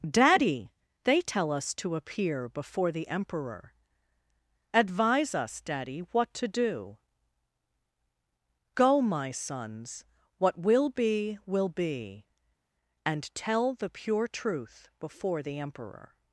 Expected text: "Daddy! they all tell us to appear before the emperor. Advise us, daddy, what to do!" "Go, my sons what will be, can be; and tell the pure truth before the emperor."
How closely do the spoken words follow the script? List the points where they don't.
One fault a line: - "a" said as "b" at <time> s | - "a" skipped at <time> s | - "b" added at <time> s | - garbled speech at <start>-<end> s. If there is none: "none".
- "all" skipped at 1.2 s
- "can" said as "will" at 11.5 s